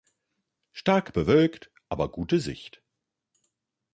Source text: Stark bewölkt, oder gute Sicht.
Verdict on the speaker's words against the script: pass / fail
fail